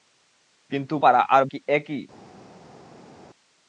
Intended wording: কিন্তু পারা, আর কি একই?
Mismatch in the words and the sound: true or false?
false